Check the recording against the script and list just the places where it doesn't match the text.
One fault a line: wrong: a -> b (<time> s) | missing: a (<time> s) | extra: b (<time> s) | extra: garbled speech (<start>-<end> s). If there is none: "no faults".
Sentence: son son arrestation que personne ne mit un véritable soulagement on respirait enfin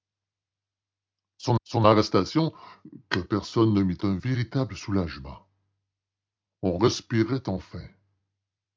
no faults